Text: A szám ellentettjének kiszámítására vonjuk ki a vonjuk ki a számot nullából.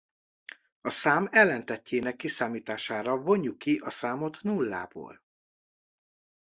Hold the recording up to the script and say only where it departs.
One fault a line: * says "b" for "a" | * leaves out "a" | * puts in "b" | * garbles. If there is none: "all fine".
* leaves out "vonjuk ki a"